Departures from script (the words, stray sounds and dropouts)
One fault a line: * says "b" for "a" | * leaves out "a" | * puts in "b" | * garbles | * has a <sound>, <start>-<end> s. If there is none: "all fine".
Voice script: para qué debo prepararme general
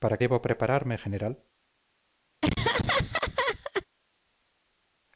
* leaves out "qué"
* has a laugh, 2.4-3.9 s